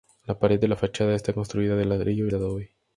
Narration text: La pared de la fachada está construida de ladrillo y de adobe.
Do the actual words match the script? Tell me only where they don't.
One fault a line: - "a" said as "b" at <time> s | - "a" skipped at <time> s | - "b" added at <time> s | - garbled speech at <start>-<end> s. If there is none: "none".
none